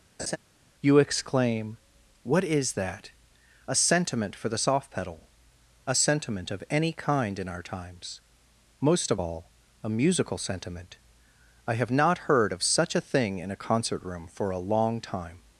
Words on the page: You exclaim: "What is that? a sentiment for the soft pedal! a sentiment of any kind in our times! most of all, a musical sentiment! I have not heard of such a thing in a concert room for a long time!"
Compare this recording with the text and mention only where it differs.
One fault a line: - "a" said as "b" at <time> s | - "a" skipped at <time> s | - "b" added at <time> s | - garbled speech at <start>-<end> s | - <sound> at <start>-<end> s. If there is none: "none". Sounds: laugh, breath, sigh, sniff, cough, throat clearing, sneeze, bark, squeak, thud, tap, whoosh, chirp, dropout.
- laugh at 0.2-0.4 s